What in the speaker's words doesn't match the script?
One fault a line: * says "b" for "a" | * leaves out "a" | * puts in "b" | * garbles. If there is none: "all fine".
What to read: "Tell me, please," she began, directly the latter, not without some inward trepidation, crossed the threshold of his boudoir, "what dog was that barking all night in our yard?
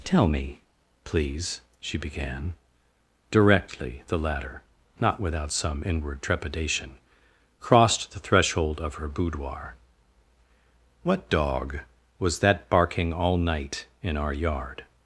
* says "her" for "his"